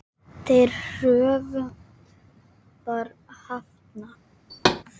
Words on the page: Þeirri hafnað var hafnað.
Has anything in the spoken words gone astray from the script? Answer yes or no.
yes